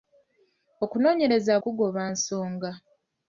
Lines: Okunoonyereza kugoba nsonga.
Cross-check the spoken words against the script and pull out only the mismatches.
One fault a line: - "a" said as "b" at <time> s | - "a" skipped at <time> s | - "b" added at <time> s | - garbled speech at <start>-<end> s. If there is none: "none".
none